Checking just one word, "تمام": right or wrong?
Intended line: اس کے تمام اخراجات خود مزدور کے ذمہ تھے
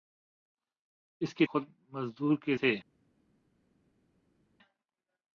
wrong